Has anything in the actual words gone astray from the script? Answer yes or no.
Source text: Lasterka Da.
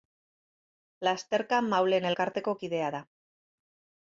yes